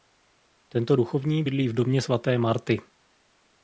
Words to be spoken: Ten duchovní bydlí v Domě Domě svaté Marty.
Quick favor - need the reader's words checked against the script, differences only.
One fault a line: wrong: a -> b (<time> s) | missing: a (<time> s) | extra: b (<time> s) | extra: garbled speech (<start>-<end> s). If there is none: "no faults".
wrong: Ten -> Tento (0.7 s)
missing: Domě (2.0 s)